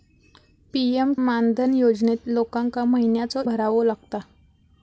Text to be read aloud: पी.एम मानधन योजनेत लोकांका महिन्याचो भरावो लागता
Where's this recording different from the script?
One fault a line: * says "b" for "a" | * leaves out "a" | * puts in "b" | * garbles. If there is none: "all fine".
all fine